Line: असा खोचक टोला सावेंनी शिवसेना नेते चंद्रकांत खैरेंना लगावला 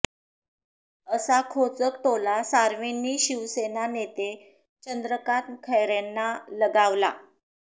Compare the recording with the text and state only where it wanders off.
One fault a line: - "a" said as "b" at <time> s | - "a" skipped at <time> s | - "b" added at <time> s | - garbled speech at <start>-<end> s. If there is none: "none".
none